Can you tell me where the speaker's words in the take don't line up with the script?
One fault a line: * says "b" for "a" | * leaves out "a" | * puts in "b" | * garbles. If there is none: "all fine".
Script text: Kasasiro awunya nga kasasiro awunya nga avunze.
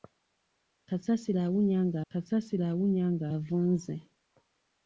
all fine